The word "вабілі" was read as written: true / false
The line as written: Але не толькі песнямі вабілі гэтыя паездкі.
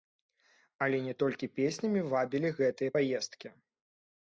true